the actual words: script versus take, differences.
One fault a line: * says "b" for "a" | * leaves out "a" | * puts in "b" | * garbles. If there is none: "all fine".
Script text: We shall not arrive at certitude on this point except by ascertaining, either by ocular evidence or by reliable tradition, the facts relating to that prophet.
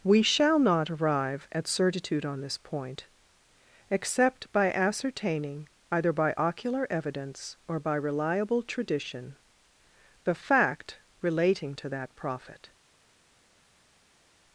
* says "fact" for "facts"